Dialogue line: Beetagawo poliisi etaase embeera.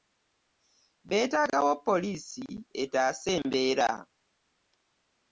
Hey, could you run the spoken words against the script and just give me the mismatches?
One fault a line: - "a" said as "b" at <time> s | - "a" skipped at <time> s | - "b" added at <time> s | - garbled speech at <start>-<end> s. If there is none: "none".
none